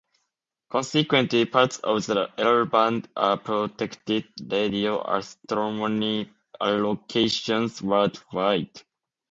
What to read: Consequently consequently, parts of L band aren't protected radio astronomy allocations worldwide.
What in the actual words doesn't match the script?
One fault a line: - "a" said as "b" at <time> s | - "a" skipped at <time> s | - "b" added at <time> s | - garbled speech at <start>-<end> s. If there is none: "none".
- "consequently" skipped at 1.4 s
- "the" added at 2.1 s
- "aren't" said as "are" at 3.1 s